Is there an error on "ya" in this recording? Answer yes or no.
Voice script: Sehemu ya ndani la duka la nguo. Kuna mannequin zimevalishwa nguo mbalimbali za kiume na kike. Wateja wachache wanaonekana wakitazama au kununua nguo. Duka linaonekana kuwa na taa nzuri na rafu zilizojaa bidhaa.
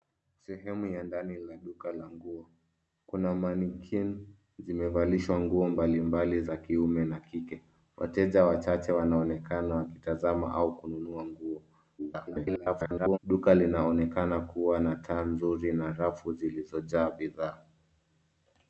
no